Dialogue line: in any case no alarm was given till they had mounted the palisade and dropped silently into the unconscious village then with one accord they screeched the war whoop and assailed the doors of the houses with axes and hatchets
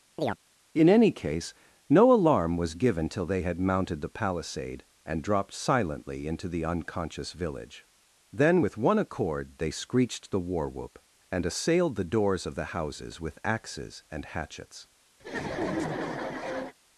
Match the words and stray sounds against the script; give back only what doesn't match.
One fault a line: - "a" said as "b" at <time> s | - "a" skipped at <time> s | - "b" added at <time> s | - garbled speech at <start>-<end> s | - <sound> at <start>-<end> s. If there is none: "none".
- chirp at 0.2-0.4 s
- laugh at 15.2-16.7 s